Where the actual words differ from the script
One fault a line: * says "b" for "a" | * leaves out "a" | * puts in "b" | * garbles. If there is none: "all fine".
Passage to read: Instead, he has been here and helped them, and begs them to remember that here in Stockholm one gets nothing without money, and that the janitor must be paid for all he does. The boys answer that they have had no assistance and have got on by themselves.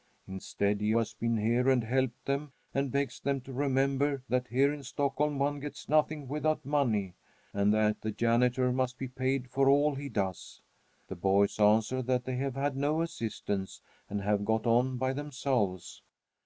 all fine